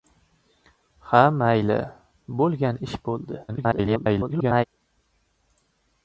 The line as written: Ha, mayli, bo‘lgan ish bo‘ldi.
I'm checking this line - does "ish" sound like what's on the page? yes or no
yes